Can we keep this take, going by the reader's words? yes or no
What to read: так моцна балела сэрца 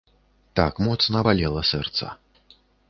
yes